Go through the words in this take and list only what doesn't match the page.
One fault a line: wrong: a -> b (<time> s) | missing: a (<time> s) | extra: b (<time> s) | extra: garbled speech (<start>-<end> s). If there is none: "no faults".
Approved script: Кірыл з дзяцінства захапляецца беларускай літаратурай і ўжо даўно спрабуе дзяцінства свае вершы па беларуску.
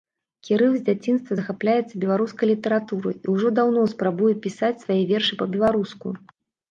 wrong: дзяцінства -> пісаць (4.4 s)